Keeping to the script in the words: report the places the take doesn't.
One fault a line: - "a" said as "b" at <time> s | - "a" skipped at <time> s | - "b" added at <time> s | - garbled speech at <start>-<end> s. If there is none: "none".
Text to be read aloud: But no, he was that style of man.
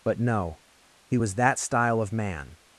none